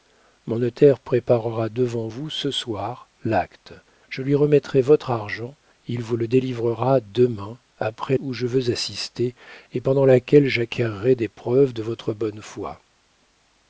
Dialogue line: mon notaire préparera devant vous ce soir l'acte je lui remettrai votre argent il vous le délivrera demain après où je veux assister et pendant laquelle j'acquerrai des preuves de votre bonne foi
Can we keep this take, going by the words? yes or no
yes